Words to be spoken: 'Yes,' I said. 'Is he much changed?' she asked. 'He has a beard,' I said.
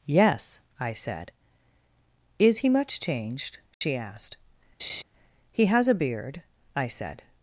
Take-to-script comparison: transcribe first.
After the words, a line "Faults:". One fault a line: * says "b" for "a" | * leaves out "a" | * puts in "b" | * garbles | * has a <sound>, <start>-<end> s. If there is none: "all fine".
'Yes,' I said. 'Is he much changed?' she asked. 'He has a beard,' I said.
Faults:
* has a dropout, 3.7-3.8 s
* has a laugh, 4.8-5.0 s